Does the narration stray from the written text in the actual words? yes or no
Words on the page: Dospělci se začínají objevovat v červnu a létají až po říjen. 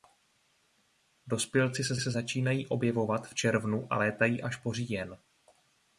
yes